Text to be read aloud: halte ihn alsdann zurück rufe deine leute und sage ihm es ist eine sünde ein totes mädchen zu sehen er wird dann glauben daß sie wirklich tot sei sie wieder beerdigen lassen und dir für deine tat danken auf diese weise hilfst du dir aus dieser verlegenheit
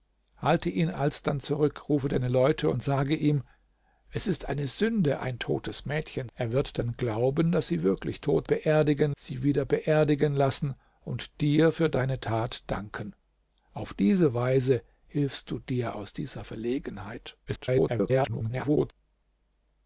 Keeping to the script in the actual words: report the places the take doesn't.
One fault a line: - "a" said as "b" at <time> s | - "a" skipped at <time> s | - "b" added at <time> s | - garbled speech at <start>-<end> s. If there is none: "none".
- "zu sehen" skipped at 6.3 s
- "sei" said as "beerdigen" at 8.4 s
- garbled speech at 17.5-18.9 s